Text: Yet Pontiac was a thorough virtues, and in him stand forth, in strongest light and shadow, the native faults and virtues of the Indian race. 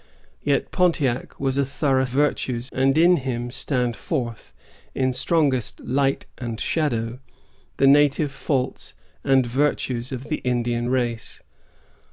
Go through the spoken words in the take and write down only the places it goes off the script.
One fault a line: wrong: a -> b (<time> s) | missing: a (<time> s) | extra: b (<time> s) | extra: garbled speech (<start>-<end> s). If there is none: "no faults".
no faults